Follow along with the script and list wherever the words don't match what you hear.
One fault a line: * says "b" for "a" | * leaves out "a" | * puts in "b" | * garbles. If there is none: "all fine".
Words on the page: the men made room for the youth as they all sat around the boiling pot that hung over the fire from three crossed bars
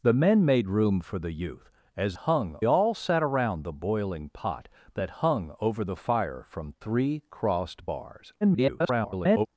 * says "hung" for "they"
* garbles